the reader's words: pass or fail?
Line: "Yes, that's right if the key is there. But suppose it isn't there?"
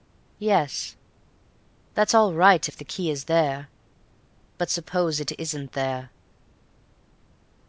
fail